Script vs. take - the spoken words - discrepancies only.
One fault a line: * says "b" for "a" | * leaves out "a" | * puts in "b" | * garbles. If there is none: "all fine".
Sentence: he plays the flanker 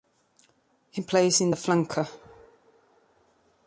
* puts in "in"